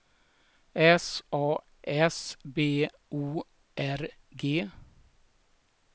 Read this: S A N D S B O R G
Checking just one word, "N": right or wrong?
wrong